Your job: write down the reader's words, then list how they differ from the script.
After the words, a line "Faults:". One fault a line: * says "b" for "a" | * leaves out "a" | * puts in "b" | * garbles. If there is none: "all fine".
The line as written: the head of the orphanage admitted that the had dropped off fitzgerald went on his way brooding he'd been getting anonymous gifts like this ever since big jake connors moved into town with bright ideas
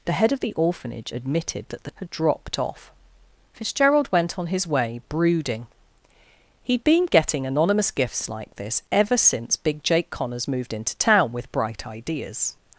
the head of the orphanage admitted that the had dropped off fitzgerald went on his way brooding he'd been getting anonymous gifts like this ever since big jake connors moved into town with bright ideas
Faults:
all fine